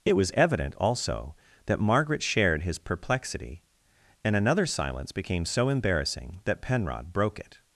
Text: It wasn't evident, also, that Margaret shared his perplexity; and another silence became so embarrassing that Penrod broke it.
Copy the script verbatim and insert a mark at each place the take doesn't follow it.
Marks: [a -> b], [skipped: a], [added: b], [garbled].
It [wasn't -> was] evident, also, that Margaret shared his perplexity; and another silence became so embarrassing that Penrod broke it.